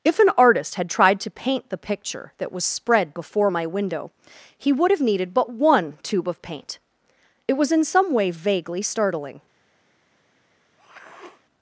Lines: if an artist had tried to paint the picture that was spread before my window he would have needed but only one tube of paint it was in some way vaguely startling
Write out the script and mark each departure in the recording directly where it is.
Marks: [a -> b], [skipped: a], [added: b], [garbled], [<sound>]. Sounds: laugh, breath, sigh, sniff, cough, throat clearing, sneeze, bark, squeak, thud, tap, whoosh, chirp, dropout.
if an artist had tried to paint the picture that was spread before my window he would have needed but [skipped: only] one tube of paint it was in some way vaguely startling [sniff]